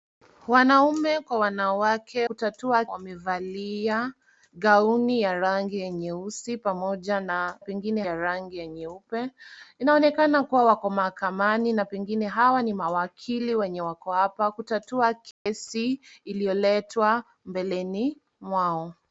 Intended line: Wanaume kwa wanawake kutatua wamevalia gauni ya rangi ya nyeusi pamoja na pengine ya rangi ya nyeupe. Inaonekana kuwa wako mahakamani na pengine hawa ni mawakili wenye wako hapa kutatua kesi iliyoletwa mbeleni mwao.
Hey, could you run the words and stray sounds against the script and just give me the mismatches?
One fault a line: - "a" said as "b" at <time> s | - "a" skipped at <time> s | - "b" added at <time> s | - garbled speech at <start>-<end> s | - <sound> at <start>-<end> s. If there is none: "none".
- dropout at 15.3-15.5 s